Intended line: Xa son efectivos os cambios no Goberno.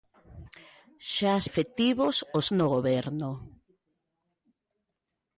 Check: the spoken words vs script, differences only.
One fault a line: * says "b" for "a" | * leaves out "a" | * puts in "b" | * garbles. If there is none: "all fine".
* leaves out "son"
* leaves out "cambios"